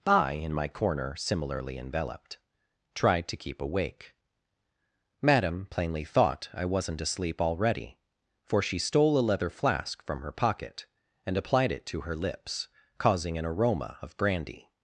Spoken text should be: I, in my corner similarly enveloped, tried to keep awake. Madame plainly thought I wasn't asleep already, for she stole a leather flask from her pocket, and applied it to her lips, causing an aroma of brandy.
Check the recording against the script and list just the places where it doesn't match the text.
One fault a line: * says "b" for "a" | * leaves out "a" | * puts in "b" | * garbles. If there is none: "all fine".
all fine